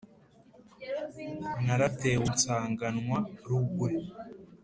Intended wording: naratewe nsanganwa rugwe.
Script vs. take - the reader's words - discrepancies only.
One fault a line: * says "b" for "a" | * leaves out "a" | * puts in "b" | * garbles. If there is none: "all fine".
all fine